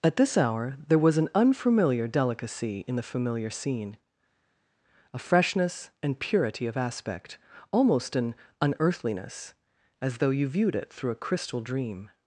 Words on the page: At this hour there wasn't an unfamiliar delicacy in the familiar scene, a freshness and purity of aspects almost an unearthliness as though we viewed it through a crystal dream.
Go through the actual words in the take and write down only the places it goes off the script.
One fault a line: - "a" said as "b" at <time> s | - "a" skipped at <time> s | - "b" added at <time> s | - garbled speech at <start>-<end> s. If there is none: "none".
- "wasn't" said as "was" at 1.0 s
- "aspects" said as "aspect" at 6.8 s
- "we" said as "you" at 10.3 s